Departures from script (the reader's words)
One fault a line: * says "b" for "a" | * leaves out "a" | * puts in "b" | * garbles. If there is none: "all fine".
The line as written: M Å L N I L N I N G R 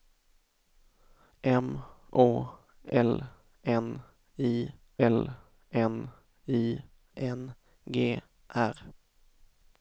all fine